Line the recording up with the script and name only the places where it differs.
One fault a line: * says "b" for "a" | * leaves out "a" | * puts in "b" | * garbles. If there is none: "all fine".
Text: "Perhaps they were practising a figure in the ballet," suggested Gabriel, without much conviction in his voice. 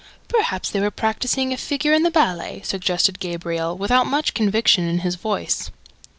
all fine